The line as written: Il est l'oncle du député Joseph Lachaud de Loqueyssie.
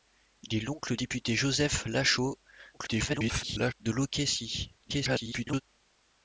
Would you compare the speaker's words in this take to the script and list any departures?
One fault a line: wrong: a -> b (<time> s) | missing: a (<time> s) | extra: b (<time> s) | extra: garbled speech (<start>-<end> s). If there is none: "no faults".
missing: du (1.0 s)
extra: garbled speech (2.7-3.7 s)
extra: garbled speech (4.8-5.6 s)